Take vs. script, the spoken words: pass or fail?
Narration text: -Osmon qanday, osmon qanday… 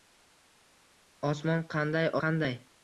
fail